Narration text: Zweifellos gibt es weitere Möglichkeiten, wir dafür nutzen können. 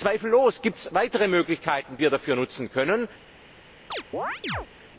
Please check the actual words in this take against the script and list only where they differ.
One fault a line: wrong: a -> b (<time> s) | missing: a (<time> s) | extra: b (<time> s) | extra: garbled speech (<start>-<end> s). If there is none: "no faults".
no faults